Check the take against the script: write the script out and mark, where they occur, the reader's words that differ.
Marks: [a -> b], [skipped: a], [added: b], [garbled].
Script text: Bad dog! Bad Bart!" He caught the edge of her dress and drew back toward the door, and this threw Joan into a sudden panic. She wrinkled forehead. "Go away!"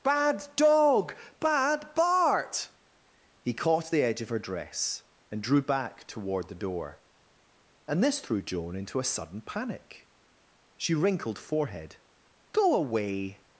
Bad dog! Bad Bart!" He caught the edge of her dress and drew back toward the door, and this threw Joan into a sudden panic. She wrinkled forehead. "Go away!"